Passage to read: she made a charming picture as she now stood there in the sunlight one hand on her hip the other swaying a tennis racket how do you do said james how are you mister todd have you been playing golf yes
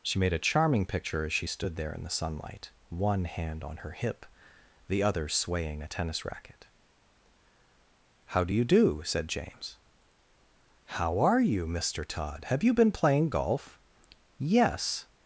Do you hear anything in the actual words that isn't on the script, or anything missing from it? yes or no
yes